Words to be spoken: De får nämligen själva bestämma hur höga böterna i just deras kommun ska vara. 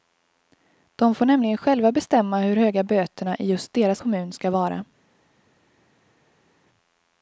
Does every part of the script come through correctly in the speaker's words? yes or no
yes